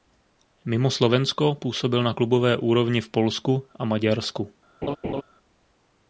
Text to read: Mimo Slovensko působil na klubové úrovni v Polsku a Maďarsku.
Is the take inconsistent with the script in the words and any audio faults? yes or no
yes